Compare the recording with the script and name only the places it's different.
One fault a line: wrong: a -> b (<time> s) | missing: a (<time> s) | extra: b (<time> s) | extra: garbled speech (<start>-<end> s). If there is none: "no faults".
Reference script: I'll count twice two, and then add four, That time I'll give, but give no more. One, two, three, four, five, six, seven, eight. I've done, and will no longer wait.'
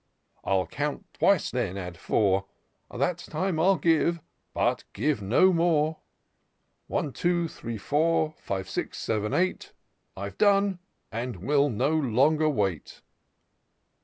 missing: two and (1.5 s)